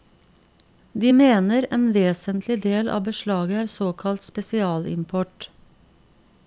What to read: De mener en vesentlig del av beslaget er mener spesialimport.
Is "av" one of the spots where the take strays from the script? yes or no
no